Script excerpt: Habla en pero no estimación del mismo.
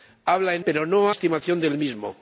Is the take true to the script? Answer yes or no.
yes